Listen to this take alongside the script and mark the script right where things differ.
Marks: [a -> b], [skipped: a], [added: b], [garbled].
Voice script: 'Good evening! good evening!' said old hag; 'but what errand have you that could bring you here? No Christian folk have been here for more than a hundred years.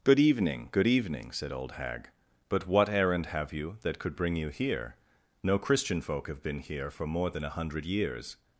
'Good evening! good evening!' said old hag; 'but what errand have you that could bring you here? No Christian folk have been here for more than a hundred years.